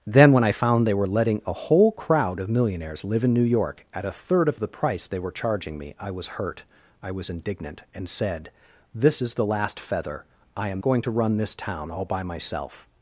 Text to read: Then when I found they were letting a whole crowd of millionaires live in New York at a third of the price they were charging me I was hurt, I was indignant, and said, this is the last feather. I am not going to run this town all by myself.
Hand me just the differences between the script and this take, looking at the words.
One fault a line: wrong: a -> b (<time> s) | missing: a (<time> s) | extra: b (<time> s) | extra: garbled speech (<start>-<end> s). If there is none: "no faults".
missing: not (10.8 s)